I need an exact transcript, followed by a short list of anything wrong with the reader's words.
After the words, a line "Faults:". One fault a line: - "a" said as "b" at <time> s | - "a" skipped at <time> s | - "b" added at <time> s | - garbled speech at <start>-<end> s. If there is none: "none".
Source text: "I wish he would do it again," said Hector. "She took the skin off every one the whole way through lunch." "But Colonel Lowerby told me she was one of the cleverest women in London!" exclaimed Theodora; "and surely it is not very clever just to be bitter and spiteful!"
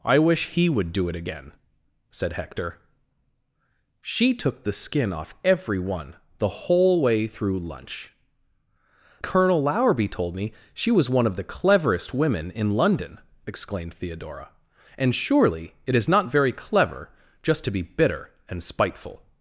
"I wish he would do it again," said Hector. "She took the skin off every one the whole way through lunch." "Colonel Lowerby told me she was one of the cleverest women in London!" exclaimed Theodora; "and surely it is not very clever just to be bitter and spiteful!"
Faults:
- "But" skipped at 8.1 s